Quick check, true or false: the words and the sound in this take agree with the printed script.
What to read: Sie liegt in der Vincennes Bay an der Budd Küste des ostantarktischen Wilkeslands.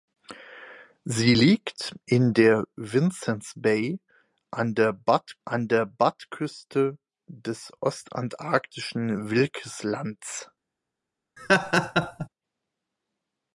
false